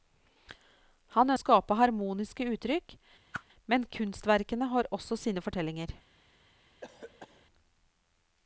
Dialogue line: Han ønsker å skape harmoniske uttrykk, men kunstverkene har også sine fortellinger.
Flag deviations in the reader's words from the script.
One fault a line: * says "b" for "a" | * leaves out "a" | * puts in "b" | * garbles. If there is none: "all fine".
* leaves out "ønsker"